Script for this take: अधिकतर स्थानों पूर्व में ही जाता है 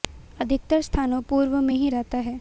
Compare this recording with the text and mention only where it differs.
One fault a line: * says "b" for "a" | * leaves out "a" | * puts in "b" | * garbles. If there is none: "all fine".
all fine